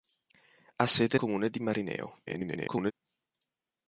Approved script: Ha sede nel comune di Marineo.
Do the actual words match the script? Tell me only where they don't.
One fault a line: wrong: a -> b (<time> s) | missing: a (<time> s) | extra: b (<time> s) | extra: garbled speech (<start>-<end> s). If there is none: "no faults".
missing: nel (1.2 s)
extra: garbled speech (2.3-2.9 s)